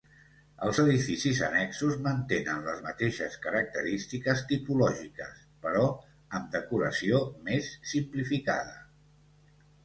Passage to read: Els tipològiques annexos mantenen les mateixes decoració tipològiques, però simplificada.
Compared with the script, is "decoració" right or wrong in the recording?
wrong